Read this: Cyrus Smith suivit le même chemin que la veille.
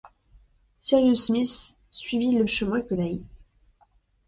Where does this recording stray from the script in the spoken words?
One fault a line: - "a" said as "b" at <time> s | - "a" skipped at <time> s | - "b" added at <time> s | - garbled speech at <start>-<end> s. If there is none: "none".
- "même" skipped at 2.4 s
- "la" skipped at 2.9 s